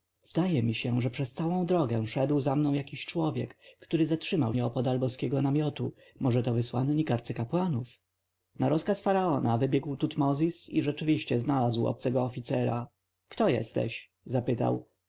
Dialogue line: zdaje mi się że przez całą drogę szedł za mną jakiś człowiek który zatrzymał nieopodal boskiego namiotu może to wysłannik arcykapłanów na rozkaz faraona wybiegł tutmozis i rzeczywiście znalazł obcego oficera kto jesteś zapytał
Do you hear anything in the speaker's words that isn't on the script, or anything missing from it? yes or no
no